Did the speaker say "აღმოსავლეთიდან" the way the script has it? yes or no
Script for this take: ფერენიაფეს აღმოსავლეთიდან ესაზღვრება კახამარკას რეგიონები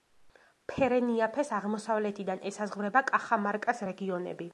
yes